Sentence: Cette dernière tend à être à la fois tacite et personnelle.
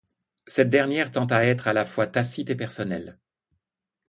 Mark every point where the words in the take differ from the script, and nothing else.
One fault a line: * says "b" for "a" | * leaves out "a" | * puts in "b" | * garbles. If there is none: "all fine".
all fine